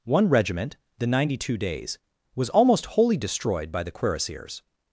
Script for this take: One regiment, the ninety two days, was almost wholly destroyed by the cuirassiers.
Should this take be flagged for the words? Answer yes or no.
no